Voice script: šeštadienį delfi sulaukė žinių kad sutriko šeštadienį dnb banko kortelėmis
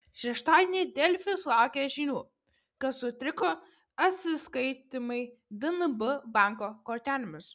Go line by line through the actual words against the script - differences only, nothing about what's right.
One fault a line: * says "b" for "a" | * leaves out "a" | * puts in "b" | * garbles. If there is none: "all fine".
* says "atsiskaitymai" for "šeštadienį"